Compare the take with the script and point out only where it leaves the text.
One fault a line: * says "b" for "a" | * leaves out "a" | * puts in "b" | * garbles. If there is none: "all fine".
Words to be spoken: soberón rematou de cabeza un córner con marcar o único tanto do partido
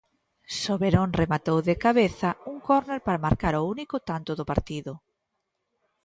* says "para" for "con"